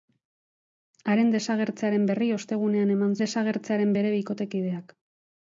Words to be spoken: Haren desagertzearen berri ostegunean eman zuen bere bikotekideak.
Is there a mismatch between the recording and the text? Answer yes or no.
yes